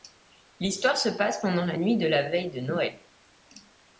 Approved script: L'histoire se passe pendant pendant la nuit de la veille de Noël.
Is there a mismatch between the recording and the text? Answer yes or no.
yes